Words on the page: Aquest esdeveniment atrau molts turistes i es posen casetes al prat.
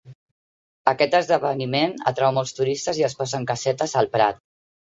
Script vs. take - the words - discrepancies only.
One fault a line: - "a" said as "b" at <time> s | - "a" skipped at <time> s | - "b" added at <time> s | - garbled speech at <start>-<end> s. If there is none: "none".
none